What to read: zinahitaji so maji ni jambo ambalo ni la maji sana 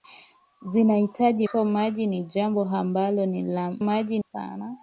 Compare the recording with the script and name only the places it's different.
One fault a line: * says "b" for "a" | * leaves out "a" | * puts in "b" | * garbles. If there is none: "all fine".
all fine